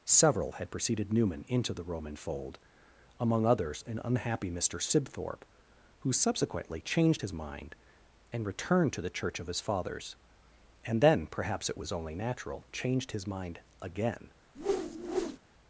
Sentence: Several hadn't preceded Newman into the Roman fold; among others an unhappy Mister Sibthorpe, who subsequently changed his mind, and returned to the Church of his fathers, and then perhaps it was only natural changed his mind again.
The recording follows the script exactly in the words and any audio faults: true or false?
false